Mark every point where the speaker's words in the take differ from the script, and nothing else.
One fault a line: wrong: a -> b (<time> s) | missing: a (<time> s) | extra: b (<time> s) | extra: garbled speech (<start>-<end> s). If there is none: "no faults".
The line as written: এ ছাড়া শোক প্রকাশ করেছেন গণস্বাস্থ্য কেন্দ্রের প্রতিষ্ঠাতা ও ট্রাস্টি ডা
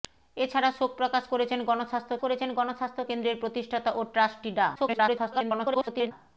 extra: করেছেন গণস্বাস্থ্য (2.2 s)
extra: garbled speech (4.7-6.1 s)